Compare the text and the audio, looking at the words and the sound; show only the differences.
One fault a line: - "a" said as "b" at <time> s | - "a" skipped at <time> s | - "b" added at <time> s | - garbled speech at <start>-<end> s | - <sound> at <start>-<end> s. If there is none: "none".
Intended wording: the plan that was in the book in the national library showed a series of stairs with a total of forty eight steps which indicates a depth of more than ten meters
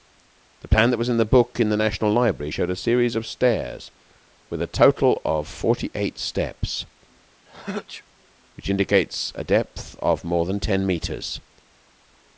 - sneeze at 7.5-8.0 s